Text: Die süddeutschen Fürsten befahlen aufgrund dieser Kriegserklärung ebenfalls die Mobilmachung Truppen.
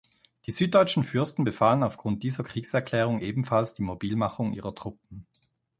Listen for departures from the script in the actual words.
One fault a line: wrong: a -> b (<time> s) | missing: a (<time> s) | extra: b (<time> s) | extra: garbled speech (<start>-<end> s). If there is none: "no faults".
extra: ihrer (4.5 s)